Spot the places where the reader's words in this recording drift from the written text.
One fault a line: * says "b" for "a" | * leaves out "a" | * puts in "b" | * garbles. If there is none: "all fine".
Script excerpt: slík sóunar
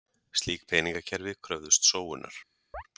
* puts in "peningakerfi kröfðust"